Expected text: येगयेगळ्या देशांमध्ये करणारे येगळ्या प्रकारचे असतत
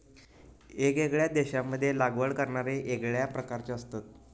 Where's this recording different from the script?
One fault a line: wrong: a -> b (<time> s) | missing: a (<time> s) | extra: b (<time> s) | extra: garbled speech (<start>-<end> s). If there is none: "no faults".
extra: लागवड (2.0 s)